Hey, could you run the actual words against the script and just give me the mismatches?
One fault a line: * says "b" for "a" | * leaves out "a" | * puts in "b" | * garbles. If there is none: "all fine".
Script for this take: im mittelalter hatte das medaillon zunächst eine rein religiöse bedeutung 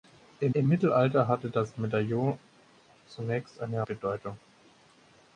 * puts in "im"
* leaves out "rein religiöse"